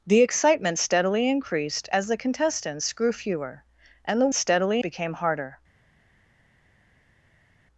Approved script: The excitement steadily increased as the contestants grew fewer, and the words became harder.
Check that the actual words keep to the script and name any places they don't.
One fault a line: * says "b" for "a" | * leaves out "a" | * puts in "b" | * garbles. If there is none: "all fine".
* says "steadily" for "words"